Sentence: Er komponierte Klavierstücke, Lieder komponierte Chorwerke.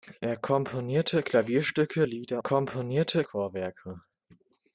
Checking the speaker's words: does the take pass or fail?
pass